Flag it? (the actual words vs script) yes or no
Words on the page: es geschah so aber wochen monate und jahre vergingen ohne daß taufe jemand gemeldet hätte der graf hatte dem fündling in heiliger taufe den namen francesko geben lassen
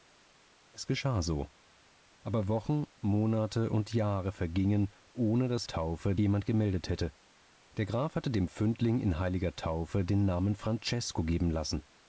no